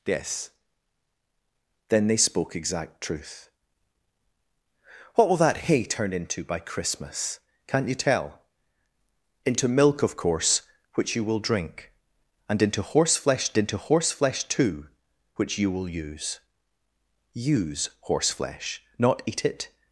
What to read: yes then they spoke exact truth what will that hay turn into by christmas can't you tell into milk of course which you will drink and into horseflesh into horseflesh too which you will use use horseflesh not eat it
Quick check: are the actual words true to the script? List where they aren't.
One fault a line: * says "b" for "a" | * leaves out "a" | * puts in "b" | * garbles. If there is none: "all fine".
all fine